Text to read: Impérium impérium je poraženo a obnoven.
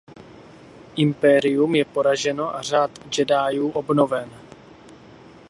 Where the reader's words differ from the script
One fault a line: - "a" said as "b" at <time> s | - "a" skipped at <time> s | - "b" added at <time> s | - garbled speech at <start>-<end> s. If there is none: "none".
- "impérium" skipped at 1.8 s
- "řád jediů" added at 2.6 s